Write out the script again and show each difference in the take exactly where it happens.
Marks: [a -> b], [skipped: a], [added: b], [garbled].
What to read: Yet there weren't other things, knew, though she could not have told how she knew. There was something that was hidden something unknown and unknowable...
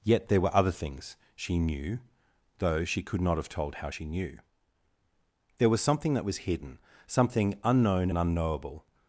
Yet there [weren't -> were] other things, [added: she] knew, though she could not have told how she knew. There was something that was hidden something unknown and unknowable...